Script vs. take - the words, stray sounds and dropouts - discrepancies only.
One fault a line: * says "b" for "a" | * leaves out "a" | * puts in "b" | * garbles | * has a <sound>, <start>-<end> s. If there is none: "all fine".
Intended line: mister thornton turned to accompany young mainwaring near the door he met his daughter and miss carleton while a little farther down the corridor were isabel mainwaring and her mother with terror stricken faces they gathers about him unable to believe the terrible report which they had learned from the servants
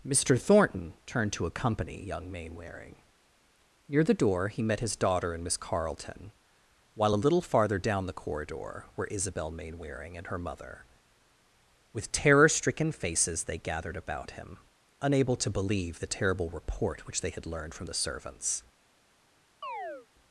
* says "gathered" for "gathers"
* has a chirp, 19.6-20.1 s